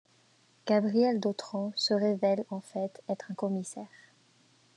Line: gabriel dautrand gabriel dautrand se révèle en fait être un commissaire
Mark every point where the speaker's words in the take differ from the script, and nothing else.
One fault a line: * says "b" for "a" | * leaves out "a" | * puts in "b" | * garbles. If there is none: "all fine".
* leaves out "gabriel dautrand"